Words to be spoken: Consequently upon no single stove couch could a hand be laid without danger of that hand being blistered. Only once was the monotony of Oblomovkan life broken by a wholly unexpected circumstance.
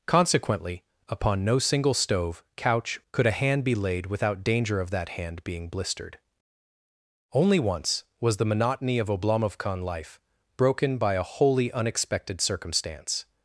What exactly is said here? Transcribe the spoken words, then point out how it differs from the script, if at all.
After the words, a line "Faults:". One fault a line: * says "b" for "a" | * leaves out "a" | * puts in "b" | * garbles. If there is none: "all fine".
Consequently upon no single stove couch could a hand be laid without danger of that hand being blistered. Only once was the monotony of Oblomovkan life broken by a wholly unexpected circumstance.
Faults:
all fine